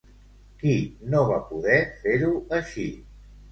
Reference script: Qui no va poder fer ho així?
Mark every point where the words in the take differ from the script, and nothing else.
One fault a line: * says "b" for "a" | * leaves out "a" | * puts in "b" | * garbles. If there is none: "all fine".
all fine